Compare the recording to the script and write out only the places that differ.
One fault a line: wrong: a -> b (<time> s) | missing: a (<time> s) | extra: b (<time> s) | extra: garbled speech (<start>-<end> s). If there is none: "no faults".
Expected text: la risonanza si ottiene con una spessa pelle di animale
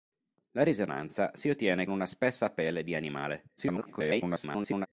missing: con (1.9 s)
extra: garbled speech (3.6-4.9 s)